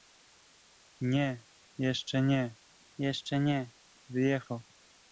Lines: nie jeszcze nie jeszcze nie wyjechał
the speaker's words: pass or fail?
pass